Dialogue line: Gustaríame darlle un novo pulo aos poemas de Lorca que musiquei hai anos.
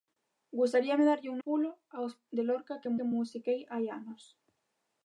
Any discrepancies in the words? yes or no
yes